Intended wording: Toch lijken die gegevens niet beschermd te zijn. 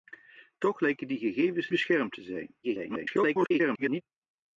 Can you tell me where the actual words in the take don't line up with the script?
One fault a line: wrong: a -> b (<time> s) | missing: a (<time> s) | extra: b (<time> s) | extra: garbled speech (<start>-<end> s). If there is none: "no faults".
missing: niet (1.7 s)
extra: garbled speech (2.6-4.0 s)